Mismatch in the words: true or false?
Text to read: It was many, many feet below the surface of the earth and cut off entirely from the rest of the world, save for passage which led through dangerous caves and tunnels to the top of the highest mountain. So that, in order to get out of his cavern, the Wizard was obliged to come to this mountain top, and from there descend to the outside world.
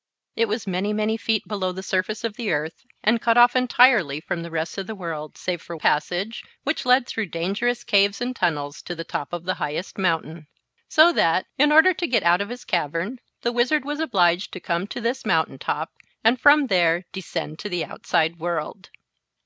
false